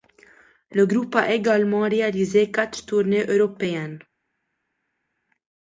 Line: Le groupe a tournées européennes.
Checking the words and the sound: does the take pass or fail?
fail